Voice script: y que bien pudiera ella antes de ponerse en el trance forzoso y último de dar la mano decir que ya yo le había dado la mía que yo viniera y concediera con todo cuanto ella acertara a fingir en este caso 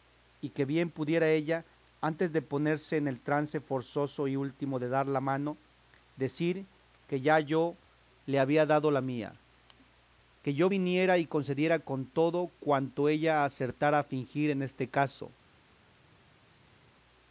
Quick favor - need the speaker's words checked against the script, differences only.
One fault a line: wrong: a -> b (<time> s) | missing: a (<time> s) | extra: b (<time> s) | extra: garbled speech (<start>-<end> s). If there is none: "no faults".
no faults